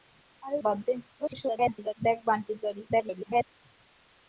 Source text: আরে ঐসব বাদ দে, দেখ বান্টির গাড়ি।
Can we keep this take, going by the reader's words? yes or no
no